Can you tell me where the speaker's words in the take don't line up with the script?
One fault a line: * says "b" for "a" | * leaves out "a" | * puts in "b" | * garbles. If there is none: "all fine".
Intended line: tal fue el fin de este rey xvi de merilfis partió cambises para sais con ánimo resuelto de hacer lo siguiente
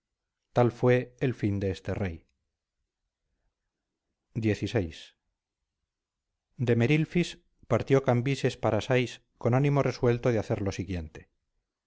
all fine